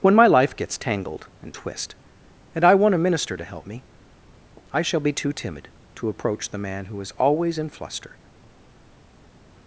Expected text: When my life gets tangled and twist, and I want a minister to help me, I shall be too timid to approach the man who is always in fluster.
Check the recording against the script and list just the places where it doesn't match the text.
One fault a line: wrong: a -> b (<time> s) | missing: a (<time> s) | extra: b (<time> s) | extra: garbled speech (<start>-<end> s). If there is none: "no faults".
no faults